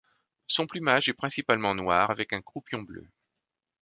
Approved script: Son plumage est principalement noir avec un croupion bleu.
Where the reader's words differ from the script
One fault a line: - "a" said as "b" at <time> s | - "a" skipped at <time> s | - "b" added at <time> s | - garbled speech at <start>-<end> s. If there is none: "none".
none